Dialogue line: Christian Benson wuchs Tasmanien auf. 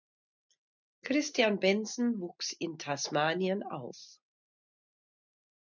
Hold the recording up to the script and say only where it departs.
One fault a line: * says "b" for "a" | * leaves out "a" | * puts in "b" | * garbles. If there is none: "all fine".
* puts in "in"